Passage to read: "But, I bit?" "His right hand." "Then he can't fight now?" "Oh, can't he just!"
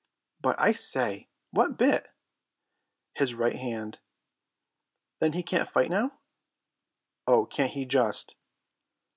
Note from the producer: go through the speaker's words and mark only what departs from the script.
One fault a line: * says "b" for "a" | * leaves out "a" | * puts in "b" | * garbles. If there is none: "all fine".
* puts in "say what"